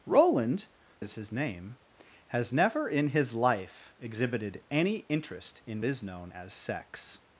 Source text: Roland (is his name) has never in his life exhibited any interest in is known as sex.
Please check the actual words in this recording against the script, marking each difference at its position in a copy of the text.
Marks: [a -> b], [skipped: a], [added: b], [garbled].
Roland (is his name) has never in his life exhibited any interest in is known as sex.